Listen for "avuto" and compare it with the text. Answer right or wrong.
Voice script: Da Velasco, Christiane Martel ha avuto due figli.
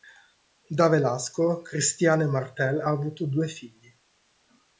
right